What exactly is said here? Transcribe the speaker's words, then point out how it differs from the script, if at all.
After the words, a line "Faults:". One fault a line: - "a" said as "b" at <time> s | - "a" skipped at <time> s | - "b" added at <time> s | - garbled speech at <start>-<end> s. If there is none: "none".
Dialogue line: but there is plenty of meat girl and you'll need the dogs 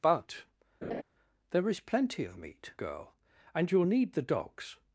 but there is plenty of meat girl and you'll need the dogs
Faults:
none